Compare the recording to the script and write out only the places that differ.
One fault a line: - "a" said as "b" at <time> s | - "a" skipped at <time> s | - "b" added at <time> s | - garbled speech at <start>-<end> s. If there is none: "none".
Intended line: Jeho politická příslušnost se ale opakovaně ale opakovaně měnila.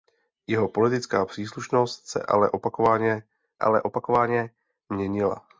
none